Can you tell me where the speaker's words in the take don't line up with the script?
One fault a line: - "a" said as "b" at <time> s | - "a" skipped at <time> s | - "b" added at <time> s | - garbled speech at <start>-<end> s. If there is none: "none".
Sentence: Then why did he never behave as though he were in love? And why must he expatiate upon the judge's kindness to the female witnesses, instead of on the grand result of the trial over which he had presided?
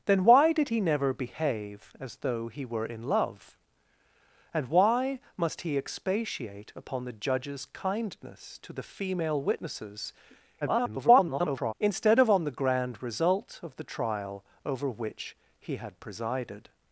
- garbled speech at 10.6-11.7 s